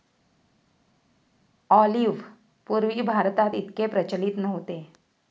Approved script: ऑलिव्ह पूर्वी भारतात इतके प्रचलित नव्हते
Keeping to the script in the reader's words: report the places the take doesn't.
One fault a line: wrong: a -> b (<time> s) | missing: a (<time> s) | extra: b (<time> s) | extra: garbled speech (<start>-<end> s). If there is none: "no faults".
no faults